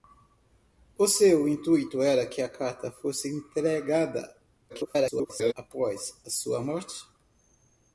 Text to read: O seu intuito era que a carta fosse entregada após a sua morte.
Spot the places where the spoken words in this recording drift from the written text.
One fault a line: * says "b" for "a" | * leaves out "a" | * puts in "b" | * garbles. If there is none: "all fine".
* garbles